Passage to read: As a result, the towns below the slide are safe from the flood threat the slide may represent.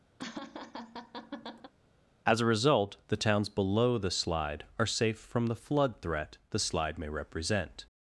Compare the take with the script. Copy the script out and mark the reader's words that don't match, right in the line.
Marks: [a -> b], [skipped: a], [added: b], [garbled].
As a result, the towns below the slide are safe from the flood threat the slide may represent.